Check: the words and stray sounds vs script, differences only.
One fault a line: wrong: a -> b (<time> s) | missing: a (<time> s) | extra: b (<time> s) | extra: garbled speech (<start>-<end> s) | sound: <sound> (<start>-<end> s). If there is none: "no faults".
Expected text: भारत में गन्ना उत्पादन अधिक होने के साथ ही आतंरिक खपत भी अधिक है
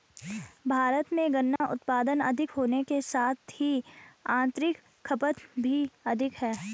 sound: dropout (1.6-1.6 s)